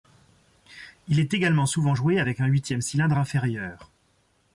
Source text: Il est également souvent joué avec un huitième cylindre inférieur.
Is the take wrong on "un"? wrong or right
right